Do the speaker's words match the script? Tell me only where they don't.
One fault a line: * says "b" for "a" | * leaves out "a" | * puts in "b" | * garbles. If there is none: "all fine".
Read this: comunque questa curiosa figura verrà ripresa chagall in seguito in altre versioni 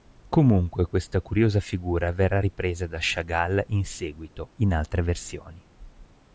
* puts in "da"